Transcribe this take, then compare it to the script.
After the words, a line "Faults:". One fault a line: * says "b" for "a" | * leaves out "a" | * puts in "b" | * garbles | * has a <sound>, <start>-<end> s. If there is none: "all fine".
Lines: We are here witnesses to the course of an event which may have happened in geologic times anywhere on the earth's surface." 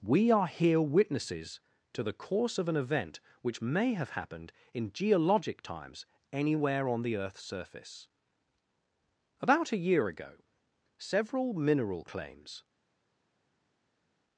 We are here witnesses to the course of an event which may have happened in geologic times anywhere on the earth's surface." About a year ago several mineral claims
Faults:
* puts in "About a year ago several mineral claims"